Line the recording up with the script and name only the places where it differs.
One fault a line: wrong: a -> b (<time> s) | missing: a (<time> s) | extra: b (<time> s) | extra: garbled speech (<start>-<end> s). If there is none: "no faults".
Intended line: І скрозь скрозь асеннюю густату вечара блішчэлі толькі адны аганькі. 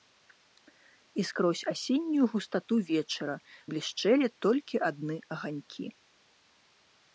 missing: скрозь (1.6 s)